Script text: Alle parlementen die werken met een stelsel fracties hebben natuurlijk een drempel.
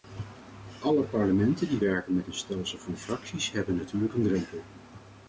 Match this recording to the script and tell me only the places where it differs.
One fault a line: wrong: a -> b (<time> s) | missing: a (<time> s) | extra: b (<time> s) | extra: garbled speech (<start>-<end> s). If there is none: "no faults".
extra: van (2.8 s)